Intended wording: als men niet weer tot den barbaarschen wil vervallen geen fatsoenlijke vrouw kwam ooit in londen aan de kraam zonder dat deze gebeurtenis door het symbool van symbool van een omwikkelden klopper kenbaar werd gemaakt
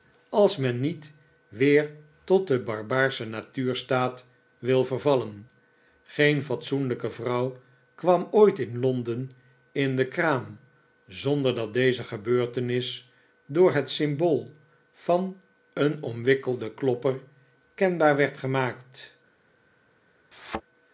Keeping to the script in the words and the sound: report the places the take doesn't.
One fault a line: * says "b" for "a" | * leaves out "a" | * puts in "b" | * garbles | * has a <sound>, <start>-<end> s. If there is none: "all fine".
* puts in "natuurstaat"
* says "in" for "aan"
* leaves out "symbool van"
* has a thud, 20.3-20.6 s